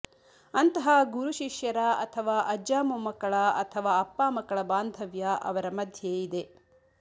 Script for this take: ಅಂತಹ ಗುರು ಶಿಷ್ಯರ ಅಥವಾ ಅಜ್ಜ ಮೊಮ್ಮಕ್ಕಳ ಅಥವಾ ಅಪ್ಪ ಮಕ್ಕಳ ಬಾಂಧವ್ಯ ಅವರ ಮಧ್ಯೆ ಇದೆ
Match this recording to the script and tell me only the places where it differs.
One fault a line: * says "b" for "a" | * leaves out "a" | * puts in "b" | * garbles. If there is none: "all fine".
all fine